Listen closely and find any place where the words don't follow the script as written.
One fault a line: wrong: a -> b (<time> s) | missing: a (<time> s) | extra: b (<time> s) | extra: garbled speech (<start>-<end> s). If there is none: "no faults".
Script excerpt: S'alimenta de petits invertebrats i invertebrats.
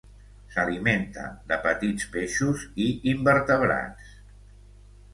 wrong: invertebrats -> peixos (2.2 s)